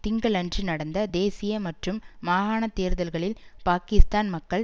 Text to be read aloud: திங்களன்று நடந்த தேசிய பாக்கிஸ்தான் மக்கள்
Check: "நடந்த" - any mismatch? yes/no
no